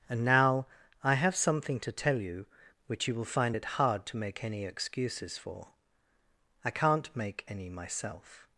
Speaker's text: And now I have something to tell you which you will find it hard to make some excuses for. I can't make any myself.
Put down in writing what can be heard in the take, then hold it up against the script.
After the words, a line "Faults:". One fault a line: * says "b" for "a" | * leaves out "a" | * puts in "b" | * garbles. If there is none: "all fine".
And now I have something to tell you which you will find it hard to make any excuses for. I can't make any myself.
Faults:
* says "any" for "some"